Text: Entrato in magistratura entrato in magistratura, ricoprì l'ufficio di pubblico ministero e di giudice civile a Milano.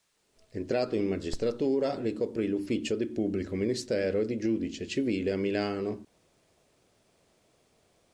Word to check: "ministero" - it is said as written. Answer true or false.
true